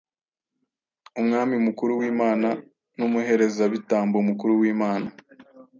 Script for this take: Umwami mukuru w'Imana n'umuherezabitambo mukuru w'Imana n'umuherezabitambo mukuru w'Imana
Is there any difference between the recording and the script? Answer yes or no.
yes